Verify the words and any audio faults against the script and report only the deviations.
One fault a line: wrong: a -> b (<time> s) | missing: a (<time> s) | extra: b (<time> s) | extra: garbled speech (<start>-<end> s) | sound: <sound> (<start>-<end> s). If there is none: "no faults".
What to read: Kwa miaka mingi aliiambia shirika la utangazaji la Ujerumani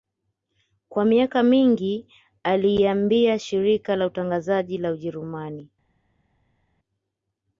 no faults